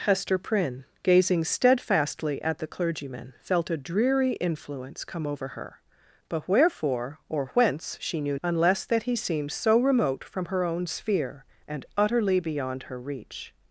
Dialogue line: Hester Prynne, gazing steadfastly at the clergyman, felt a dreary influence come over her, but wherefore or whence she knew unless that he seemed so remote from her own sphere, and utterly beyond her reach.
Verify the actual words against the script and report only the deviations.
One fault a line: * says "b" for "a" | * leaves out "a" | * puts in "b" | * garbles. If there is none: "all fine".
all fine